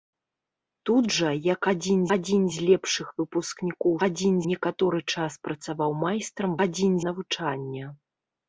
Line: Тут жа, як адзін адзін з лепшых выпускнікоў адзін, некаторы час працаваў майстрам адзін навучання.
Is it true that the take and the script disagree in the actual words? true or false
false